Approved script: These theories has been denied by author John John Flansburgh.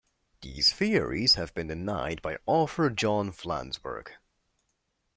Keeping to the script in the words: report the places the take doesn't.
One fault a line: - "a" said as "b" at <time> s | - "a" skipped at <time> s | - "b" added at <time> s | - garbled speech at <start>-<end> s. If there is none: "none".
- "has" said as "have" at 1.4 s
- "John" skipped at 3.3 s